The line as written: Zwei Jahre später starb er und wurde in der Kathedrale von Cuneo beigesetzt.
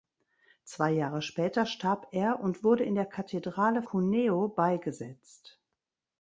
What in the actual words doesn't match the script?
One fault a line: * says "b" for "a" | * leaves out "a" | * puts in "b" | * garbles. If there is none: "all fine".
* leaves out "von"